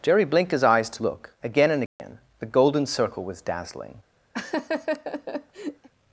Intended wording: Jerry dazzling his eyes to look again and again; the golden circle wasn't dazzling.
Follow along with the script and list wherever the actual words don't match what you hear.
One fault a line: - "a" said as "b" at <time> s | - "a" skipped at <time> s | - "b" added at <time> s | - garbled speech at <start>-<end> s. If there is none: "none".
- "dazzling" said as "blinked" at 0.2 s
- "wasn't" said as "was" at 3.2 s